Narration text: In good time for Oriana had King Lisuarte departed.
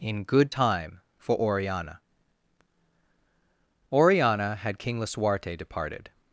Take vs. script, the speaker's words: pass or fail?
fail